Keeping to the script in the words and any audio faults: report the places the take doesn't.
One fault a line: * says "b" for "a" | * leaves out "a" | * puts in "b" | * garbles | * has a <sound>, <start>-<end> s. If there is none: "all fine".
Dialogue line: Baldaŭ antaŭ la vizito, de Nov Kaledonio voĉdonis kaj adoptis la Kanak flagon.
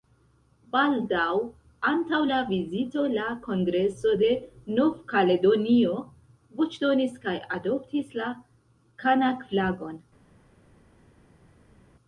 * puts in "la Kongreso"